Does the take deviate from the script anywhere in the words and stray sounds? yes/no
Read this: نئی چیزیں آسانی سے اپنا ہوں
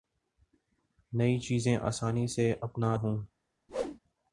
yes